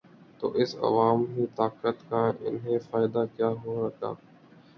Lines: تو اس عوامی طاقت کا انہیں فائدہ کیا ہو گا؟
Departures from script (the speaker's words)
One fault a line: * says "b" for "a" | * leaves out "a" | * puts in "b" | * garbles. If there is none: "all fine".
all fine